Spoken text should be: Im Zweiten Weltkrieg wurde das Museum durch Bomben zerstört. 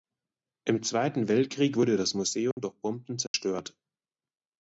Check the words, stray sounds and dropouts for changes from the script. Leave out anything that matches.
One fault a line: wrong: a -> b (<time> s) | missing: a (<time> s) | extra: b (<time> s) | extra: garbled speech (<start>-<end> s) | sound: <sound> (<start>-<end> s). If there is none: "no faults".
sound: dropout (2.5-2.6 s)
sound: dropout (3.3-3.3 s)